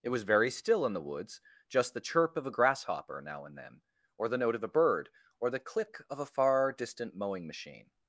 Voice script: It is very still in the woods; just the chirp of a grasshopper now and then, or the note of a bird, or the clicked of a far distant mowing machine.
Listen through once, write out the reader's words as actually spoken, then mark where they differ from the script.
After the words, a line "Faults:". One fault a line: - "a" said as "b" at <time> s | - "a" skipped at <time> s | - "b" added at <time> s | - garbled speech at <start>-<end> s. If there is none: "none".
It was very still in the woods; just the chirp of a grasshopper now and then, or the note of a bird, or the click of a far distant mowing machine.
Faults:
- "is" said as "was" at 0.1 s
- "clicked" said as "click" at 5.6 s